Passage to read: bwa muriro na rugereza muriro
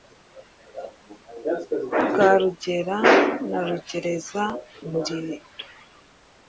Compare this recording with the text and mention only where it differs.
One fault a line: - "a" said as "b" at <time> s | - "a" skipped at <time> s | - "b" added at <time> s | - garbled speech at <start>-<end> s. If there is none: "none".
- "muriro" said as "rugera" at 2.4 s